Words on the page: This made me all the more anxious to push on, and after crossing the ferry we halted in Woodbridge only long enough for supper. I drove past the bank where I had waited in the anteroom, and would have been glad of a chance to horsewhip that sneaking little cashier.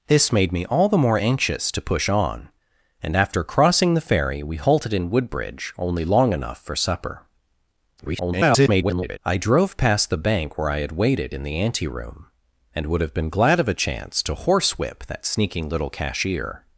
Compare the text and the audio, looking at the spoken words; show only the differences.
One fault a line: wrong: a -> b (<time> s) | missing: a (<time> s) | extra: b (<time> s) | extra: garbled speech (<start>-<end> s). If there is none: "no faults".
extra: garbled speech (8.0-9.2 s)